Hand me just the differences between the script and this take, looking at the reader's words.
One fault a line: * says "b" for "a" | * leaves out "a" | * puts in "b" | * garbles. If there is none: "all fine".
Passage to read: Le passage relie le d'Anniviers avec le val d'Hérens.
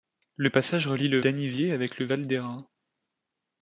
all fine